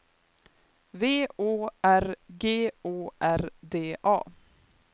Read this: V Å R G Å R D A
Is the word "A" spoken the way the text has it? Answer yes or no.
yes